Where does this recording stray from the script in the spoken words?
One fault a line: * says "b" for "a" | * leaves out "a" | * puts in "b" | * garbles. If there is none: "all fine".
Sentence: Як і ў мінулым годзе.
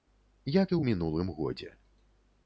all fine